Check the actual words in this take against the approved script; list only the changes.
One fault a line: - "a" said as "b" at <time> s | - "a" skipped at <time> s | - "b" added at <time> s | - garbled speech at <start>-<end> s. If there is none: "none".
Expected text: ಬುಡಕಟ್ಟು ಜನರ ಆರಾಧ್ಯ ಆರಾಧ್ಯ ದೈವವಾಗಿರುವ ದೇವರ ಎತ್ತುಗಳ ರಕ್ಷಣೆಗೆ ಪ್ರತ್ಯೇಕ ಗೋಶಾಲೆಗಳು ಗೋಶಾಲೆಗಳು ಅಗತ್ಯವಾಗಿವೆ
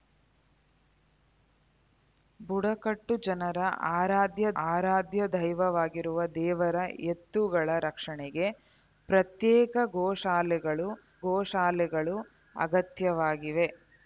none